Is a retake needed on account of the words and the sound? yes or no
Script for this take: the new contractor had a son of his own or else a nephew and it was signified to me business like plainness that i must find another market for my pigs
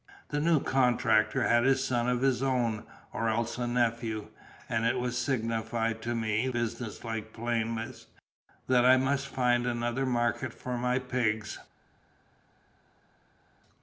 no